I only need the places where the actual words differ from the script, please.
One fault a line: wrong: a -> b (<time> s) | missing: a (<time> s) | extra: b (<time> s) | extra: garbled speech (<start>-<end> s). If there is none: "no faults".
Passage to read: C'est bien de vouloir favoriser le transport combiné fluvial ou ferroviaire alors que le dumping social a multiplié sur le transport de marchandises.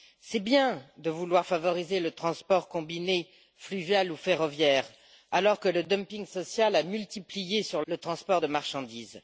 no faults